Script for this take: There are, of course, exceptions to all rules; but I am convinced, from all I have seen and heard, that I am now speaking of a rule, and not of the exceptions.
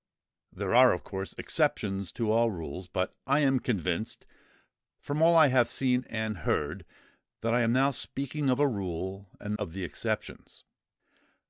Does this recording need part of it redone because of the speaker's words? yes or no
yes